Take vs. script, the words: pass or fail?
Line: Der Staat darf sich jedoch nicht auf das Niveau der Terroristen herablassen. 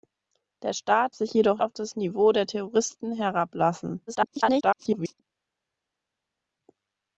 fail